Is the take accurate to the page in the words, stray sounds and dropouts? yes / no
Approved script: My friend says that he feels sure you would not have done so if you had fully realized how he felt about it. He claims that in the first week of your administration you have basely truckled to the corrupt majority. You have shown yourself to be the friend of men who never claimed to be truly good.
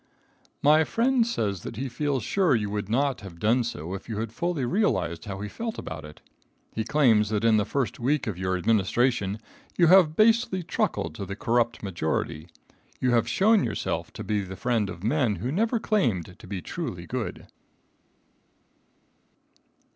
yes